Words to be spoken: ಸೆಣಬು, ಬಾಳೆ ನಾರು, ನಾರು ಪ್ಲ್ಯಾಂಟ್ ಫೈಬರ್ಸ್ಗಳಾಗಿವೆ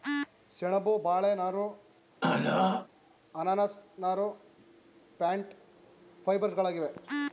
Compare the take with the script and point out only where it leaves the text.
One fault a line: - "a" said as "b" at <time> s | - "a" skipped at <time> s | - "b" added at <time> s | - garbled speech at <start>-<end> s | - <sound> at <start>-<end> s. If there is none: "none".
- throat clearing at 2.2-2.9 s
- "ಅನಾನಸ್" added at 3.4 s